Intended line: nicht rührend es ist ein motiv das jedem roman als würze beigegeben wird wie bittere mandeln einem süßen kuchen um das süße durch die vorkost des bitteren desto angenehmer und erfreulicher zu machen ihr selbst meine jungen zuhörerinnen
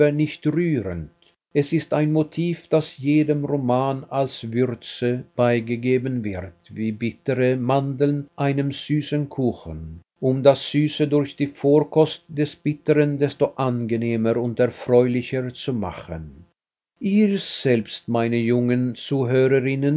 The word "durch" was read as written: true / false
true